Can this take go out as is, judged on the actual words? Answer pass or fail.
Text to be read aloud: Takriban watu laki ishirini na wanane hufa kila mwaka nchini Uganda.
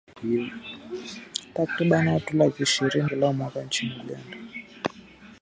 fail